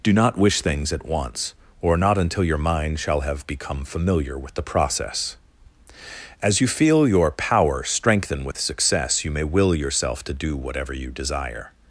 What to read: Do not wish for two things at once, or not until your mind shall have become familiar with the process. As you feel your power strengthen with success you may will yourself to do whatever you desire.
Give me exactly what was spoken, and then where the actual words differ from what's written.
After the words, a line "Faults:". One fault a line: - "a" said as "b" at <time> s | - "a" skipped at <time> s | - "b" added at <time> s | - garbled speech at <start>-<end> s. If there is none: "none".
Do not wish things at once, or not until your mind shall have become familiar with the process. As you feel your power strengthen with success you may will yourself to do whatever you desire.
Faults:
- "for two" skipped at 0.6 s